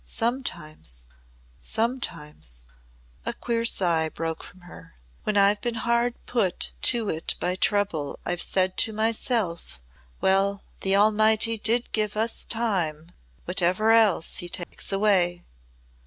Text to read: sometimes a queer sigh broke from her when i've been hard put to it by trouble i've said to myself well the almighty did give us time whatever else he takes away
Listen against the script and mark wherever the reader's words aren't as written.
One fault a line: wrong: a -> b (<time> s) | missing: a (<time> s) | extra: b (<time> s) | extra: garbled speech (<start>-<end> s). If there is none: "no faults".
extra: sometimes (1.6 s)